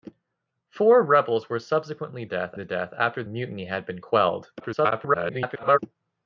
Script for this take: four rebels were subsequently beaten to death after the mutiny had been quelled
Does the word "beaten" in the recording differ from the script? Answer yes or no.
yes